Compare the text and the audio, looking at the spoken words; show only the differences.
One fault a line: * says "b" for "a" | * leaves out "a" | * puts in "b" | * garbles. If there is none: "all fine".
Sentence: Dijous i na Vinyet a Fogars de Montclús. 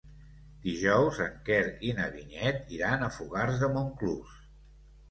* puts in "en Quer"
* puts in "iran"